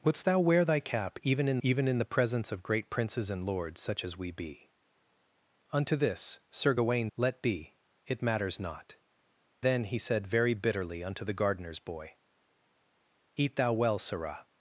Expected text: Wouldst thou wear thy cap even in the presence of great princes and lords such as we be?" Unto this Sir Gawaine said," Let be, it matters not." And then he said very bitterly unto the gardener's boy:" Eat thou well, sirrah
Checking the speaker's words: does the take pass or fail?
fail